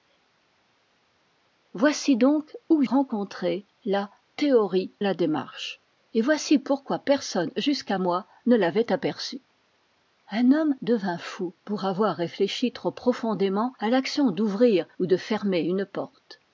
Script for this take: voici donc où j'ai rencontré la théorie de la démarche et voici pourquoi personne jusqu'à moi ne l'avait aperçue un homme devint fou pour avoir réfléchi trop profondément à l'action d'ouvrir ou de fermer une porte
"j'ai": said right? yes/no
no